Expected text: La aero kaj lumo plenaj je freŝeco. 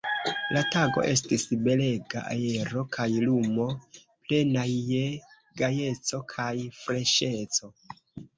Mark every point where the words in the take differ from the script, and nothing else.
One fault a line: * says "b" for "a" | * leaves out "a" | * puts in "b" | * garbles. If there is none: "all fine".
* puts in "tago estis belega"
* puts in "gajeco kaj"